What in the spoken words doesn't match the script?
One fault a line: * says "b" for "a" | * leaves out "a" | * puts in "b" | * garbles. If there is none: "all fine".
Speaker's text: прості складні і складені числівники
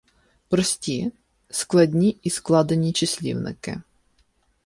all fine